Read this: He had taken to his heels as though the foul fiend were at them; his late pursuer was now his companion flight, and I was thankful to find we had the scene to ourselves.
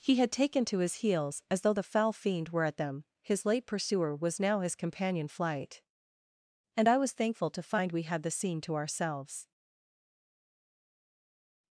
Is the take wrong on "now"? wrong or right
right